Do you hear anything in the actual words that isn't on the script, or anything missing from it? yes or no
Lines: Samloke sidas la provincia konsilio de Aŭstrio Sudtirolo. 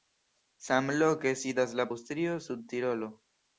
yes